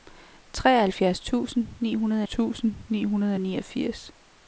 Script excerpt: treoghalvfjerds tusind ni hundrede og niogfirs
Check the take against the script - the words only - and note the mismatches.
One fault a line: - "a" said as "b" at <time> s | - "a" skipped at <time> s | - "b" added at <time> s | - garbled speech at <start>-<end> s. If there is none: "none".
- "tusind ni hundrede" added at 2.2 s